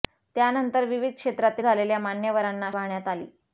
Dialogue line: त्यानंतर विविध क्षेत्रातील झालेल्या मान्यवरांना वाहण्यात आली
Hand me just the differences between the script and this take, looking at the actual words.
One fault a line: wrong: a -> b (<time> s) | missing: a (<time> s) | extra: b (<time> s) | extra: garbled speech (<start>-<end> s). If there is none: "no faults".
no faults